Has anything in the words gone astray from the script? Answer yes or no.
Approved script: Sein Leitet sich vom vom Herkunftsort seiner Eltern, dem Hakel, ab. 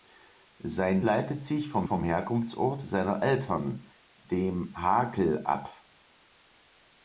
no